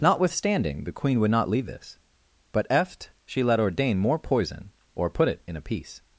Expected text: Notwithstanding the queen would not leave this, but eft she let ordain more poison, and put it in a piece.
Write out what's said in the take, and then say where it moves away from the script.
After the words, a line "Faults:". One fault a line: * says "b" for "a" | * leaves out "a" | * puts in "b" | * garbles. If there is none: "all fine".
Notwithstanding the queen would not leave this, but eft she let ordain more poison, or put it in a piece.
Faults:
* says "or" for "and"